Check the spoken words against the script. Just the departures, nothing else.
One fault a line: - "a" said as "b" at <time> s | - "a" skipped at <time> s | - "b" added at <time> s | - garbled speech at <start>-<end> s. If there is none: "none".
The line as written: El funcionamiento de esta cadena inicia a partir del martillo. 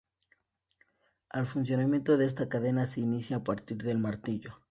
- "se" added at 2.9 s